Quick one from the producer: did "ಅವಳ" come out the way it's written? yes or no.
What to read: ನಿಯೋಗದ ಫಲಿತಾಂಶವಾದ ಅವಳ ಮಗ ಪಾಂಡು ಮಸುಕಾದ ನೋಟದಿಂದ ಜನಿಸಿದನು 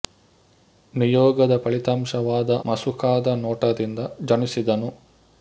no